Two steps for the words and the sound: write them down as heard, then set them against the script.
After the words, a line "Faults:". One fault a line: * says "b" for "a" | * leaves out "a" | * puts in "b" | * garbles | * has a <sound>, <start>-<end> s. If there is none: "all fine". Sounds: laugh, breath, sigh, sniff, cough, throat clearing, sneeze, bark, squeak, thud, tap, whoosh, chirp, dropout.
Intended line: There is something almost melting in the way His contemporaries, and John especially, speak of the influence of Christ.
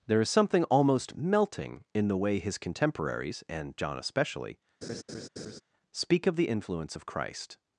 There is something almost melting in the way His contemporaries, and John especially, speak of the influence of Christ.
Faults:
* has a laugh, 4.8-5.6 s